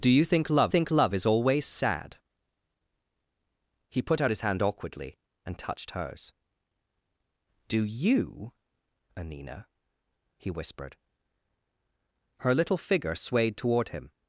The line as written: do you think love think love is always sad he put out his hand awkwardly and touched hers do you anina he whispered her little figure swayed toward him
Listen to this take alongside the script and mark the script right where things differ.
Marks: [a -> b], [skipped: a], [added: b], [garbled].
do you think love think love is always sad he put out his hand awkwardly and touched hers do you anina he whispered her little figure swayed toward him